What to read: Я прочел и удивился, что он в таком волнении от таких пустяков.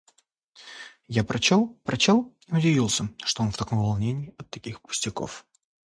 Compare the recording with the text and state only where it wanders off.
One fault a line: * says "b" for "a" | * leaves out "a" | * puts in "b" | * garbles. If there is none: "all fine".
* puts in "прочел"